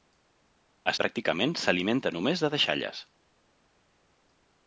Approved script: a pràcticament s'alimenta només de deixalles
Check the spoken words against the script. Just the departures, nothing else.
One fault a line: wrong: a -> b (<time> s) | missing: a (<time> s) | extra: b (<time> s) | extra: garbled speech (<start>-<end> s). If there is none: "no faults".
no faults